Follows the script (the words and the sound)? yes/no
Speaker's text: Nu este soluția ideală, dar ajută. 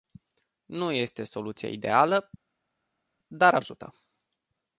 yes